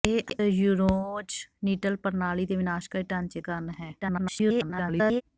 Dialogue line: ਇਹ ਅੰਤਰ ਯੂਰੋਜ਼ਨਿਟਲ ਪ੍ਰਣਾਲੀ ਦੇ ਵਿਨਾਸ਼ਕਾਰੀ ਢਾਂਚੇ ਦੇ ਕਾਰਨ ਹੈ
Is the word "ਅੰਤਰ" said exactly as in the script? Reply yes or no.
no